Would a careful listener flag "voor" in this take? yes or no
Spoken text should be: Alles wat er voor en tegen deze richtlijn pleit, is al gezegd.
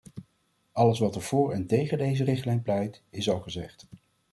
no